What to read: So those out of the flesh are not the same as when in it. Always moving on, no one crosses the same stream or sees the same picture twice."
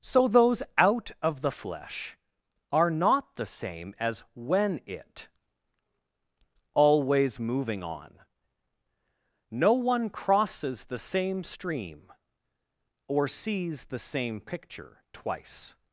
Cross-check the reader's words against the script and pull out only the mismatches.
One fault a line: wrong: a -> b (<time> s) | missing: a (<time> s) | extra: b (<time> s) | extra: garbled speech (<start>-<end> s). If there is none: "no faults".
missing: in (4.8 s)